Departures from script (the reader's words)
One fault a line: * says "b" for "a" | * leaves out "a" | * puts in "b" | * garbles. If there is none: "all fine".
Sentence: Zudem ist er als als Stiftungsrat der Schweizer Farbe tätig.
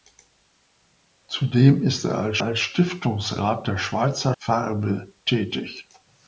all fine